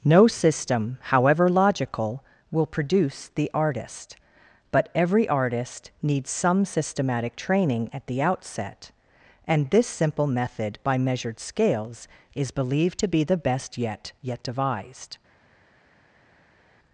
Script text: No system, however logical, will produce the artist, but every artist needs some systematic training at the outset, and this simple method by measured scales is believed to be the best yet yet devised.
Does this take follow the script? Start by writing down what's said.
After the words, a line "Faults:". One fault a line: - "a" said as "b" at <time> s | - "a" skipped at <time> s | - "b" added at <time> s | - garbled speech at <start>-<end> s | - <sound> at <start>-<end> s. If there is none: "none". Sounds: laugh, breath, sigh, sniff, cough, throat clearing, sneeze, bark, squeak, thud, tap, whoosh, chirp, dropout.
No system, however logical, will produce the artist, but every artist needs some systematic training at the outset, and this simple method by measured scales is believed to be the best yet yet devised.
Faults:
none